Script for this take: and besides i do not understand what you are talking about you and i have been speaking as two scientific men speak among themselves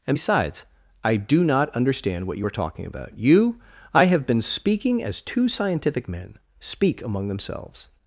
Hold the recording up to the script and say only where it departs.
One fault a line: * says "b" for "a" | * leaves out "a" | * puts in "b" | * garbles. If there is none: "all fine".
* leaves out "and"